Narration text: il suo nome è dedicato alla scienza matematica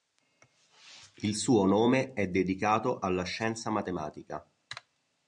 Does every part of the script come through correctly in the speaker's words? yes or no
yes